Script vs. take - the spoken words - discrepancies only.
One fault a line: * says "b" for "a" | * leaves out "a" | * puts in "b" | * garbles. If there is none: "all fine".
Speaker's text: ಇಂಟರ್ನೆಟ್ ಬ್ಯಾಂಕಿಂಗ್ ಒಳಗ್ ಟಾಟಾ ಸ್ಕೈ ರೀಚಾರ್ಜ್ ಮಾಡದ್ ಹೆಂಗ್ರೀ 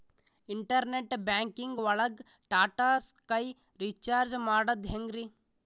all fine